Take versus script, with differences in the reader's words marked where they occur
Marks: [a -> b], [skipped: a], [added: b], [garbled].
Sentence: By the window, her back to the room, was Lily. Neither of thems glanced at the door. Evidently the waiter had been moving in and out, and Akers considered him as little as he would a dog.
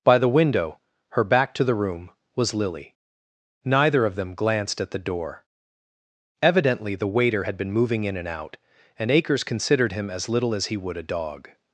By the window, her back to the room, was Lily. Neither of [thems -> them] glanced at the door. Evidently the waiter had been moving in and out, and Akers considered him as little as he would a dog.